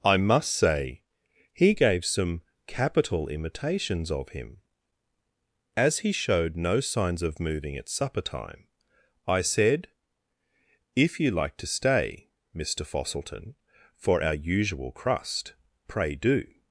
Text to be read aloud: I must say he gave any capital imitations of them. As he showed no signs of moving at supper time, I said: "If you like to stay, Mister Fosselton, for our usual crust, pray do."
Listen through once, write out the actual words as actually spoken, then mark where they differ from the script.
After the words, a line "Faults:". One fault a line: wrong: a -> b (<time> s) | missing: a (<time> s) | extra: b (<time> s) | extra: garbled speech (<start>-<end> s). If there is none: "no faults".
I must say he gave some capital imitations of him. As he showed no signs of moving at supper time, I said: "If you like to stay, Mister Fosselton, for our usual crust, pray do."
Faults:
wrong: any -> some (2.0 s)
wrong: them -> him (4.3 s)